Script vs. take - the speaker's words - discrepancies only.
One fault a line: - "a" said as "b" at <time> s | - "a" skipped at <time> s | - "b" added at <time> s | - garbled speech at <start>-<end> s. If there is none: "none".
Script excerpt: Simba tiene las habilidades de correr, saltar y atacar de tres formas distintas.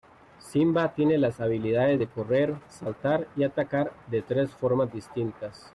none